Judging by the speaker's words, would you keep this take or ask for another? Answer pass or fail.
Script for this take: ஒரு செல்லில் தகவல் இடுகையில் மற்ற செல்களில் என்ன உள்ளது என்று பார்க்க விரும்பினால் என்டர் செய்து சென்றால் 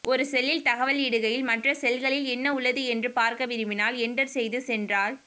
pass